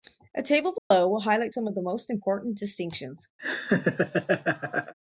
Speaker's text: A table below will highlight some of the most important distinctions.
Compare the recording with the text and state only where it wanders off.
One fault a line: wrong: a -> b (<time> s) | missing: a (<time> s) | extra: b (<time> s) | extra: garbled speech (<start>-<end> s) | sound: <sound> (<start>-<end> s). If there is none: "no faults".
sound: dropout (0.8-0.9 s)
sound: laugh (3.4-4.9 s)